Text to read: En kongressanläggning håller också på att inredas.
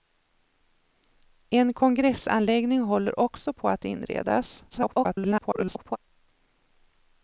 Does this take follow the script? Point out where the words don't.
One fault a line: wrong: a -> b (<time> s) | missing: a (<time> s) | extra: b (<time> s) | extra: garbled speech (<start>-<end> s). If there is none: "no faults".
extra: garbled speech (4.7-6.0 s)